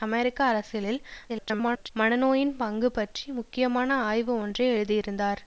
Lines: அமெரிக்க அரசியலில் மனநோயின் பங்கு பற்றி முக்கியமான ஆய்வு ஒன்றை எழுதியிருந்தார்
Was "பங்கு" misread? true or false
false